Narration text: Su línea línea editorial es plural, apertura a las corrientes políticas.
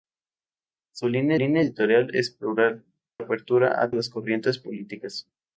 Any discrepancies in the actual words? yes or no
no